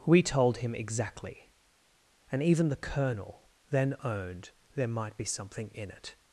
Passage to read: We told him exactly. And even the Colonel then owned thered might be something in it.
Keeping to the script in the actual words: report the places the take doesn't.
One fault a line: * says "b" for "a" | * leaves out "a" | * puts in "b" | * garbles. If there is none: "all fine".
* says "there" for "thered"